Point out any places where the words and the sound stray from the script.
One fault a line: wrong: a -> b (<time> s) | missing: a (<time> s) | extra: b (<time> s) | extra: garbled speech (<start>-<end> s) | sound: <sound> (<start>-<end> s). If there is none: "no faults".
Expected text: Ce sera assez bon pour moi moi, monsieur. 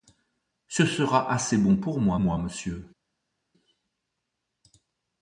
no faults